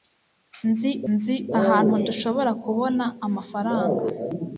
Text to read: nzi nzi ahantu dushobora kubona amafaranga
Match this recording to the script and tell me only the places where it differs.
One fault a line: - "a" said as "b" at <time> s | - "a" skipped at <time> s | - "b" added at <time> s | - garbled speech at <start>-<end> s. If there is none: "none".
none